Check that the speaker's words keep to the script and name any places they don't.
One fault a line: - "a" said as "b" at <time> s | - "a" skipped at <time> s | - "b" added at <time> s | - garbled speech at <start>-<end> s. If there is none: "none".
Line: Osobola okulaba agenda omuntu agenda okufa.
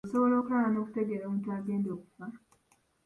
- "agenda" said as "n'okutegeera" at 0.7 s